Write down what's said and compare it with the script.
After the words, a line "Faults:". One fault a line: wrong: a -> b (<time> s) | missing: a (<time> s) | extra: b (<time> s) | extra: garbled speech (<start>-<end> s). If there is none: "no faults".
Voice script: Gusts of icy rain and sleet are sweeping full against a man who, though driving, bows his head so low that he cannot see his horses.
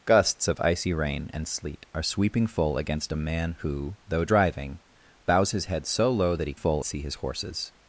Gusts of icy rain and sleet are sweeping full against a man who, though driving, bows his head so low that he full see his horses.
Faults:
wrong: cannot -> full (6.5 s)